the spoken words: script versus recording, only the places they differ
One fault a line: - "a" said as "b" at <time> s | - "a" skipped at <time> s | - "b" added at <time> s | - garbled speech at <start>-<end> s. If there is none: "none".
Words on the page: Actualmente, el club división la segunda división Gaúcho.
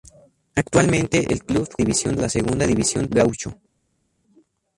none